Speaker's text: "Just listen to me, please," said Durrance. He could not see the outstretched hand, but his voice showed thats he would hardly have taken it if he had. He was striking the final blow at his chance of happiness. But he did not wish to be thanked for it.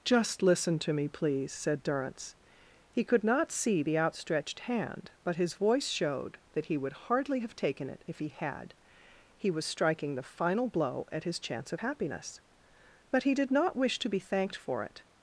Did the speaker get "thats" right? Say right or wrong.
wrong